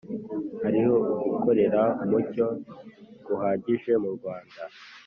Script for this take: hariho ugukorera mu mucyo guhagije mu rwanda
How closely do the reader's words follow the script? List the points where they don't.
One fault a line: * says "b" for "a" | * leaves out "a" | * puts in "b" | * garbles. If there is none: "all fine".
* leaves out "mu"